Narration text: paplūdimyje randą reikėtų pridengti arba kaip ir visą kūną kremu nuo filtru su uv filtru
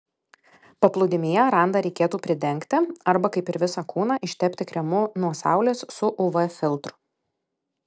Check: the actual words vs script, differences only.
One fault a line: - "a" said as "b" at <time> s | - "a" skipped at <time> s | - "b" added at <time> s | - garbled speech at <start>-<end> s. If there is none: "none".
- "ištepti" added at 4.3 s
- "filtru" said as "saulės" at 5.4 s